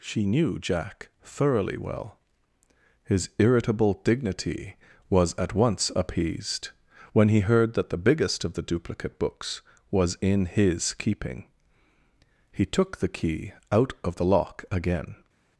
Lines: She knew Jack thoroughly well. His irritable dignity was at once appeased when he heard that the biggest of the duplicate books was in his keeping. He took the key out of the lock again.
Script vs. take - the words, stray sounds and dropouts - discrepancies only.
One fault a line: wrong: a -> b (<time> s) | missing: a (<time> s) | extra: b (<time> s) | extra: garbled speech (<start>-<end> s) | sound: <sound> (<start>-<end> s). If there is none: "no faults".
no faults